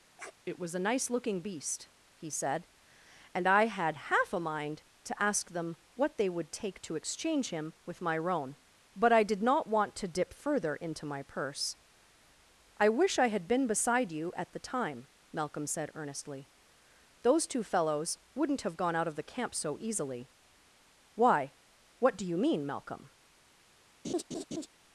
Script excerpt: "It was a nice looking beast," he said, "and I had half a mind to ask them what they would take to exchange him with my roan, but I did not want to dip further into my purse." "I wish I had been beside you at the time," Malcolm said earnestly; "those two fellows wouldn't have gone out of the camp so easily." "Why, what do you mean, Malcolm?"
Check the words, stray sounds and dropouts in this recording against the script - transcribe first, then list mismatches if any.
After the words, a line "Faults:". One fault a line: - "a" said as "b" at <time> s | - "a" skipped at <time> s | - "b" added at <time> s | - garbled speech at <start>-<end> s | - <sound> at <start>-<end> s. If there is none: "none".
"It was a nice looking beast," he said, "and I had half a mind to ask them what they would take to exchange him with my roan, but I did not want to dip further into my purse." "I wish I had been beside you at the time," Malcolm said earnestly; "those two fellows wouldn't have gone out of the camp so easily." "Why, what do you mean, Malcolm?"
Faults:
- sniff at 0.2-0.3 s
- laugh at 24.0-24.7 s